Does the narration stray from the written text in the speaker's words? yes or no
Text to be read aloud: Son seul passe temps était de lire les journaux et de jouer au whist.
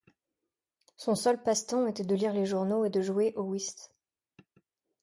no